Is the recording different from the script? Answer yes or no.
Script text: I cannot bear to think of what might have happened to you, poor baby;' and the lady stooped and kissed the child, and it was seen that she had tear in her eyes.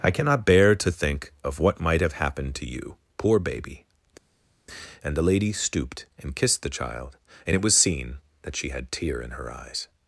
no